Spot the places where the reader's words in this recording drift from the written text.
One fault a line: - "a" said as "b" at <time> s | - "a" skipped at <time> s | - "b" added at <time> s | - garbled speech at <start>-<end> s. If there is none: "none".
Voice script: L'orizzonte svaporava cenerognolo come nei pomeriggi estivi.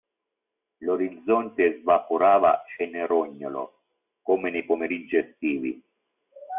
none